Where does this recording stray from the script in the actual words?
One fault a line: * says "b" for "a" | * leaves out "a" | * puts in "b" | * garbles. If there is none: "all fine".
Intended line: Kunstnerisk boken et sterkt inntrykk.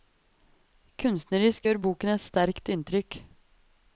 * puts in "gjør"